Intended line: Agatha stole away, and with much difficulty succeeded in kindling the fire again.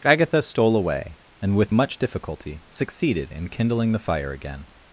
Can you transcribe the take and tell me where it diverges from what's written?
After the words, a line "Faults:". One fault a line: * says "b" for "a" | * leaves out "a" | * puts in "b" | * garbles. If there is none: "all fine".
Agatha stole away, and with much difficulty succeeded in kindling the fire again.
Faults:
all fine